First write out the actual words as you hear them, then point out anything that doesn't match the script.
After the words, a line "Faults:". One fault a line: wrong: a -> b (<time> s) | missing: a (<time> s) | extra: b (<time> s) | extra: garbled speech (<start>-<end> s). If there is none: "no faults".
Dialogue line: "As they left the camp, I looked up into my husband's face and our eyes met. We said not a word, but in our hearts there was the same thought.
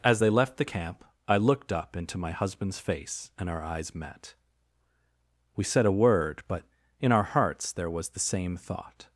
"As they left the camp, I looked up into my husband's face and our eyes met. We said a word, but in our hearts there was the same thought.
Faults:
missing: not (5.8 s)